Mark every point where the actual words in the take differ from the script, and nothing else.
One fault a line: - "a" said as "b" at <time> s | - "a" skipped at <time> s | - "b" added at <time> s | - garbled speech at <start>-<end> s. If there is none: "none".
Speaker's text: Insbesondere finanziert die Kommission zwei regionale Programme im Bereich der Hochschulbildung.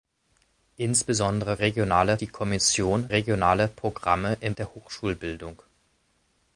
- "finanziert" said as "regionale" at 1.6 s
- "zwei" skipped at 3.1 s
- "Bereich" skipped at 4.5 s